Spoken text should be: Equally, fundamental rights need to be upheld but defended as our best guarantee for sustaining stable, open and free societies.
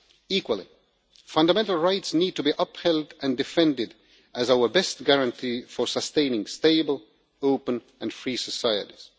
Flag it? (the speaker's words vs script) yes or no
yes